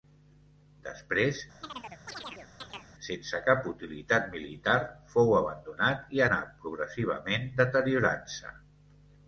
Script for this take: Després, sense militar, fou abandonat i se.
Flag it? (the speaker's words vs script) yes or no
yes